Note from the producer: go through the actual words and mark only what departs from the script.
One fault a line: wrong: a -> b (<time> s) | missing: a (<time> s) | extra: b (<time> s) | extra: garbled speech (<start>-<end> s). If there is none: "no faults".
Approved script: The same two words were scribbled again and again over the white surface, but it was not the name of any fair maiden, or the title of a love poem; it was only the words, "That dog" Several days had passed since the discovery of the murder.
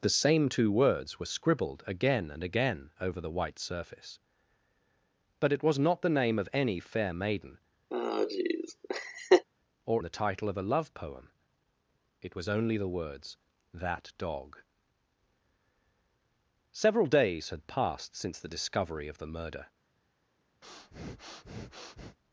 no faults